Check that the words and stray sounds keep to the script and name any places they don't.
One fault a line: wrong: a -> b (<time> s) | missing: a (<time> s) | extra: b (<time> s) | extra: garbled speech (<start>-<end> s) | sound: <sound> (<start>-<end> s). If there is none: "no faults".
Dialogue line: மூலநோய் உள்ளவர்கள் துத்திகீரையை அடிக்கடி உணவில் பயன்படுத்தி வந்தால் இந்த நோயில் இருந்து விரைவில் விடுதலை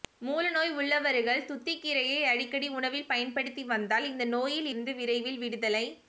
no faults